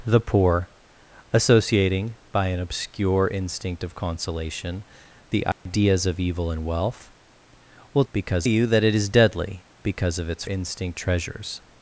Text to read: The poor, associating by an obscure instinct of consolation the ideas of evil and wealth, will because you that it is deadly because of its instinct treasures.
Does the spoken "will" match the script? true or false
true